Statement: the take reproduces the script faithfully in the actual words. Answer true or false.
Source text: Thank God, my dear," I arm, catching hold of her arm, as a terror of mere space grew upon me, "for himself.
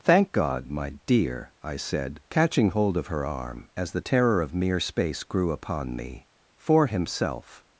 false